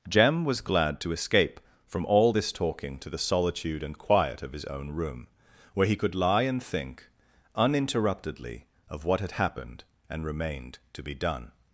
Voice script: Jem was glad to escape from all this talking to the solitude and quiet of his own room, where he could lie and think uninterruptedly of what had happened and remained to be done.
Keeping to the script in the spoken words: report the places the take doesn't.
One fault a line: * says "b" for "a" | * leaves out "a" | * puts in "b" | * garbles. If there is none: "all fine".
all fine